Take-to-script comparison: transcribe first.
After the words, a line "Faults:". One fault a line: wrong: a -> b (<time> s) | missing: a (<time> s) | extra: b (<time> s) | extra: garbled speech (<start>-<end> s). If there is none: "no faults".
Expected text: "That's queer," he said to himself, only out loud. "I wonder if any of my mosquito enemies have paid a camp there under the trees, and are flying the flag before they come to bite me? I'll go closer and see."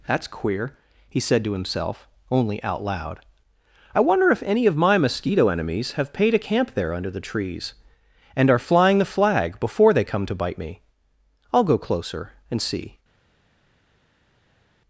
"That's queer," he said to himself, only out loud. "I wonder if any of my mosquito enemies have paid a camp there under the trees, and are flying the flag before they come to bite me? I'll go closer and see."
Faults:
no faults